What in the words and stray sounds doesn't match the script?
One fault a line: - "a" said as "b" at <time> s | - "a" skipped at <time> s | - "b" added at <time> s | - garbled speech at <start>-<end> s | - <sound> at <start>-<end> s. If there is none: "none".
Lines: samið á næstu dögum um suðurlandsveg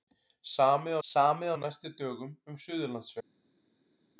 - "samið" added at 1.1 s